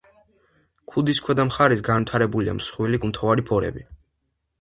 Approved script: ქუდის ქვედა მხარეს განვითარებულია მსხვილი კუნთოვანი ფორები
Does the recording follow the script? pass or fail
pass